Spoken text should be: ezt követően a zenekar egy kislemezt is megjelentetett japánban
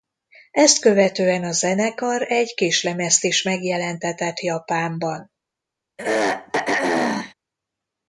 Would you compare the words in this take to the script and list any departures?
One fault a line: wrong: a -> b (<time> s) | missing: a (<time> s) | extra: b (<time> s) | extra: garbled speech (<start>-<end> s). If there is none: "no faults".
no faults